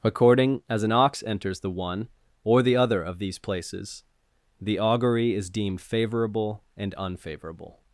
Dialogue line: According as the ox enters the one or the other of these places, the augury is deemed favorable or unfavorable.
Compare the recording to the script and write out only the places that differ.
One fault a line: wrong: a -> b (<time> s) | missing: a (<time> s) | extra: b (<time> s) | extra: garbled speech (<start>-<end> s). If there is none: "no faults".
wrong: the -> an (0.8 s)
wrong: or -> and (6.8 s)